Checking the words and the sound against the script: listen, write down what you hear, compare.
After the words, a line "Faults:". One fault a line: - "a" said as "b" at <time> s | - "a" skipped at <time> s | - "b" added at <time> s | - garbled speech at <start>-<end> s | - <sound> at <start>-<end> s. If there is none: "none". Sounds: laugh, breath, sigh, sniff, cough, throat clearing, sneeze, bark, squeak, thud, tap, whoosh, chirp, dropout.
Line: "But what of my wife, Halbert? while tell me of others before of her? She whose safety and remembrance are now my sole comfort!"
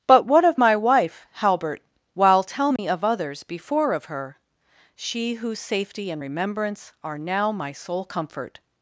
"But what of my wife, Halbert? while tell me of others before of her? She whose safety and remembrance are now my sole comfort!"
Faults:
- dropout at 2.8-2.8 s